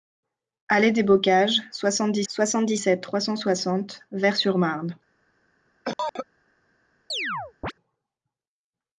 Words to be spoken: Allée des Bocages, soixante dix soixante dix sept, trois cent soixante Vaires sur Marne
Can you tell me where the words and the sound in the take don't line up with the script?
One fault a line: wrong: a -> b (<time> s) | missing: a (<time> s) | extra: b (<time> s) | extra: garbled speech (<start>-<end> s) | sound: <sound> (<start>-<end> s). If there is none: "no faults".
sound: cough (5.8-6.3 s)
sound: chirp (7.1-7.7 s)